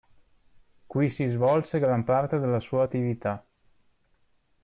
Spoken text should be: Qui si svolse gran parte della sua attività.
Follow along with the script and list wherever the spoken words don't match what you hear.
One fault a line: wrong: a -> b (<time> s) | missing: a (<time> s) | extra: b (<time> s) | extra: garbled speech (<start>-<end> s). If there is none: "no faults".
no faults